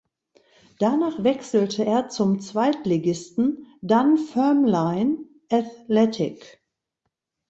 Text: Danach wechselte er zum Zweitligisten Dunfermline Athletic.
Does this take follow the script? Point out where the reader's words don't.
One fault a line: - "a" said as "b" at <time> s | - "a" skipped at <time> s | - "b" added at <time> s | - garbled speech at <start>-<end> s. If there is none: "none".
none